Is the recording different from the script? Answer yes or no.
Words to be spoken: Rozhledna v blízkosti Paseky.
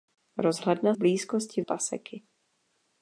no